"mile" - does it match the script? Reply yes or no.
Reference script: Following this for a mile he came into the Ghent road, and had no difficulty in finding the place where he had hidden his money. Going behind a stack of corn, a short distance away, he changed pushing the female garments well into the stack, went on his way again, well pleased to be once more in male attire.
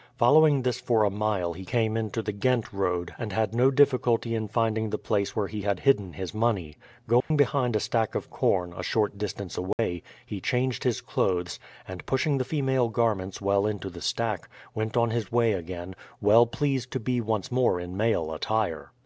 yes